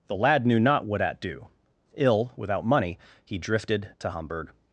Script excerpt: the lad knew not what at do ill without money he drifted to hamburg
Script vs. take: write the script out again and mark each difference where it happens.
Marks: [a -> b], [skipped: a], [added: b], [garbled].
the lad knew not what at do ill without money he drifted to hamburg